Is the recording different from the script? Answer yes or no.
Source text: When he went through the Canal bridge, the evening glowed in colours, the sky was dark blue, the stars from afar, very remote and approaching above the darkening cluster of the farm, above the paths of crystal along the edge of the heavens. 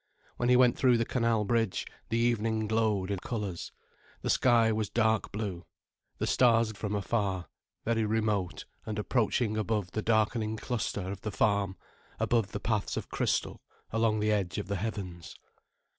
no